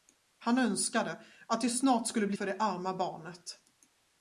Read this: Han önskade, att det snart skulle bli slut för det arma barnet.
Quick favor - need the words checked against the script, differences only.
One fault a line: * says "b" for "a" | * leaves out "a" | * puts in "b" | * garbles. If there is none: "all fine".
* leaves out "slut"